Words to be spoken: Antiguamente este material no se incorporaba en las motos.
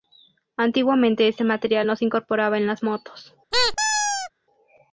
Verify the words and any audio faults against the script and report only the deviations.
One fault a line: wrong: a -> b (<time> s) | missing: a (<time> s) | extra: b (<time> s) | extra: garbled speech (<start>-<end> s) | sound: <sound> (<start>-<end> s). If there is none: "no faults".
sound: squeak (3.5-4.3 s)